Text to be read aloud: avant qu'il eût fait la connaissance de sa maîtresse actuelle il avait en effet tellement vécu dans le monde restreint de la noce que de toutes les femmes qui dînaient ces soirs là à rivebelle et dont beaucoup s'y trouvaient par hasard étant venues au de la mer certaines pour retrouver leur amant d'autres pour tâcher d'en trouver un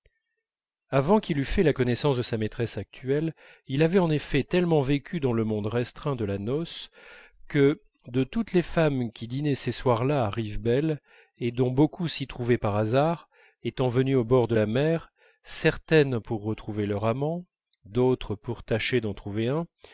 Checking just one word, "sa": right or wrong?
right